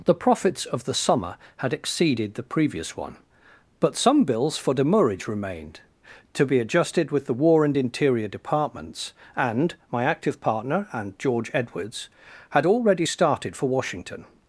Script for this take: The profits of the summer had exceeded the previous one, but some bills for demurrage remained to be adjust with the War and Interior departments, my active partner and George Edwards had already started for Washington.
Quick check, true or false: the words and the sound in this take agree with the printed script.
false